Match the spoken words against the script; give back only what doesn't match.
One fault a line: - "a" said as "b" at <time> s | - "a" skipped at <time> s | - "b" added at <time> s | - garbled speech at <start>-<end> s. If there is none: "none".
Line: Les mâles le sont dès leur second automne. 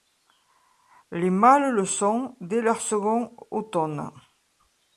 none